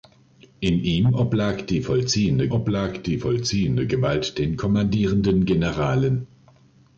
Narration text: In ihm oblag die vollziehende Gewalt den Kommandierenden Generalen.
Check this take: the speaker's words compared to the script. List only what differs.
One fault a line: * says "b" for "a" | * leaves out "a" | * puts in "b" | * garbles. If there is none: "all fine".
* puts in "oblag die vollziehende"